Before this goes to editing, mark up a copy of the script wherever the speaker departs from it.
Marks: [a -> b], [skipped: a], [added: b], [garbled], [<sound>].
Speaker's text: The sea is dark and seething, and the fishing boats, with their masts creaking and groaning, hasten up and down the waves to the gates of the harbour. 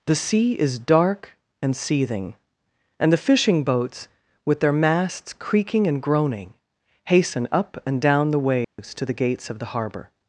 The sea is dark and seething, and the fishing boats, with their masts creaking and groaning, hasten up and down the waves [dropout] to the gates of the harbour.